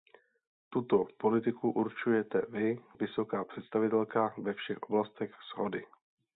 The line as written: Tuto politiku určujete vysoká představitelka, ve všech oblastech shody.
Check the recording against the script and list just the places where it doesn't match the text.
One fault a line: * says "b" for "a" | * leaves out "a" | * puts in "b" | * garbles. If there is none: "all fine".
* puts in "vy"